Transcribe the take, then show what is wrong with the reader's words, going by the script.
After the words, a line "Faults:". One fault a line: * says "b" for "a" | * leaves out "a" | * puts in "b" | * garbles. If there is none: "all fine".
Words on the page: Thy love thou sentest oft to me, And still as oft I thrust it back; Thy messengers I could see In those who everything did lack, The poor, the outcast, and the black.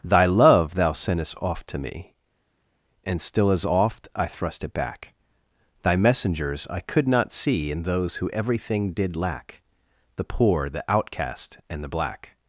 Thy love thou sentest oft to me, And still as oft I thrust it back; Thy messengers I could not see In those who everything did lack, The poor, the outcast, and the black.
Faults:
* puts in "not"